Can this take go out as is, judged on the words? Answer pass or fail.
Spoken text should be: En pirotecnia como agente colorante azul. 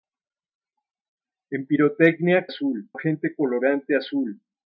fail